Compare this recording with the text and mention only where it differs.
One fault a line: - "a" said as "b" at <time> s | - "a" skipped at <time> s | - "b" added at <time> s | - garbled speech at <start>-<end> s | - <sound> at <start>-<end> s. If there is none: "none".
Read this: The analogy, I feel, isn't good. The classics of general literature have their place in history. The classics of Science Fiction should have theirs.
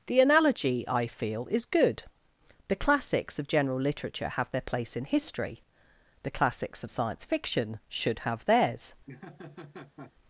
- "isn't" said as "is" at 1.5 s
- laugh at 9.1-10.1 s